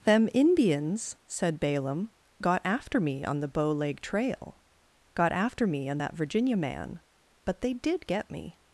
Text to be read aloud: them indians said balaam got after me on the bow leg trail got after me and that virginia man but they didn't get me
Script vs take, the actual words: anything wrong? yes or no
yes